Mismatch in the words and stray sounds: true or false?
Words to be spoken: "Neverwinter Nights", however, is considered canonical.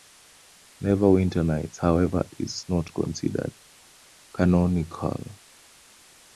true